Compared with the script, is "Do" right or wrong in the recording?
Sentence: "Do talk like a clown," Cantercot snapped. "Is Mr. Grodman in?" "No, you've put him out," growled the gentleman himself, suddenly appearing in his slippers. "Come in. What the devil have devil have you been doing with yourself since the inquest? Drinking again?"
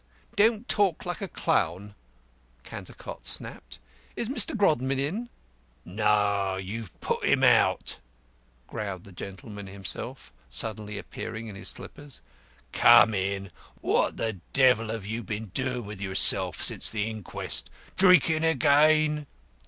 wrong